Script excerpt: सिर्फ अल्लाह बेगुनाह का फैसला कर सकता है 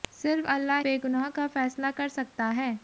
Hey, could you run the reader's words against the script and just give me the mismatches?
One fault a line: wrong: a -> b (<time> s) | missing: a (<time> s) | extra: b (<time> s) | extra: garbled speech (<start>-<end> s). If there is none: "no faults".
no faults